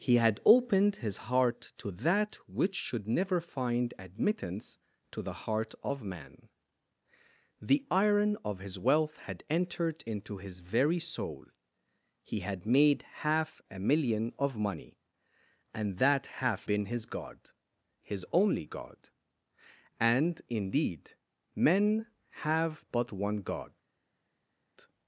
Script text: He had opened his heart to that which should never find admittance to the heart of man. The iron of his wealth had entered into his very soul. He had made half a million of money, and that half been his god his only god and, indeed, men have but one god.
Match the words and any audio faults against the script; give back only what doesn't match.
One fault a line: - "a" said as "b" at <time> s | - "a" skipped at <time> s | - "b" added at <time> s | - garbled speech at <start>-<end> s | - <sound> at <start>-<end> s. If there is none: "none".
none